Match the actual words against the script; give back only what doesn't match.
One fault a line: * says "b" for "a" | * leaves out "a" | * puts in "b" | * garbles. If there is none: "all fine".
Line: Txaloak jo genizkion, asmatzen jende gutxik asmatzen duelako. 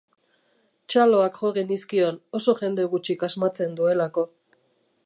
* says "oso" for "asmatzen"